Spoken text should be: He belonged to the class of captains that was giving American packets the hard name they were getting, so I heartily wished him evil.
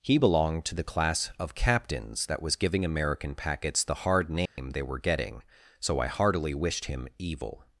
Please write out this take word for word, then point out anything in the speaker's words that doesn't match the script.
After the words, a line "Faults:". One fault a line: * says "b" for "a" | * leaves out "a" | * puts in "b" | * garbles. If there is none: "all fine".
He belonged to the class of captains that was giving American packets the hard name they were getting, so I heartily wished him evil.
Faults:
all fine